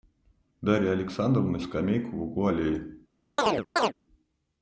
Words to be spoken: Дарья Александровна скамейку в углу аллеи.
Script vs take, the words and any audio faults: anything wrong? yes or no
yes